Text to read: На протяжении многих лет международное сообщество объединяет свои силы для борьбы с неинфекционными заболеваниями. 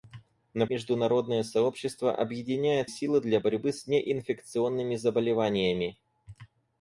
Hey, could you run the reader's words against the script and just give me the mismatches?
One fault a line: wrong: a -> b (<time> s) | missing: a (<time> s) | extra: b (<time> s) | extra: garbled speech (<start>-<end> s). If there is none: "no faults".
missing: протяжении многих лет (0.7 s)
missing: свои (2.9 s)